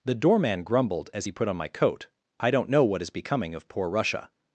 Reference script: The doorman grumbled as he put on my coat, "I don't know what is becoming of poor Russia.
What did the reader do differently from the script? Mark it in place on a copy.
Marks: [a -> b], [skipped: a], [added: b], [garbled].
The doorman grumbled as he put on my coat, "I don't know what is becoming of poor Russia.